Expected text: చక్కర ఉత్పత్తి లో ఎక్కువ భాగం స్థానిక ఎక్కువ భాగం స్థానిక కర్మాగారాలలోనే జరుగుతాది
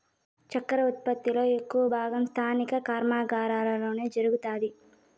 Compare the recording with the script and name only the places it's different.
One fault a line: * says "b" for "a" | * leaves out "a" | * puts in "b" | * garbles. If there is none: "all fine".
* leaves out "ఎక్కువ భాగం స్థానిక"